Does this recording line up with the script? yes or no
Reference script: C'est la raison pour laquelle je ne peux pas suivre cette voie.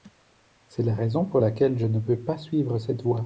yes